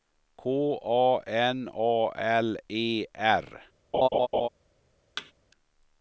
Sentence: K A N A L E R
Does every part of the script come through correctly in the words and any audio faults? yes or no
no